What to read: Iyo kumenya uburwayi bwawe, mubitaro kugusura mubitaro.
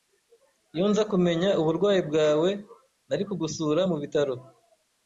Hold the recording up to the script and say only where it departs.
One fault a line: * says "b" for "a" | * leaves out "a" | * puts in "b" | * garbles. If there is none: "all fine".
* puts in "nza"
* says "nari" for "mubitaro"